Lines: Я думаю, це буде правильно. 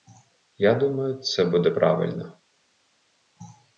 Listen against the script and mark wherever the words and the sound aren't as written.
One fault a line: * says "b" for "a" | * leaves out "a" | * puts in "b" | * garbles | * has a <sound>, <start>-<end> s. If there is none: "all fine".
all fine